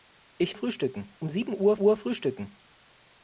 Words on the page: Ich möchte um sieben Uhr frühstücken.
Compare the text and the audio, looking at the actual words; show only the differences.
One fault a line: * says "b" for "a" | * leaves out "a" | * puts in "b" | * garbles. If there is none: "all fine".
* says "frühstücken" for "möchte"
* puts in "Uhr"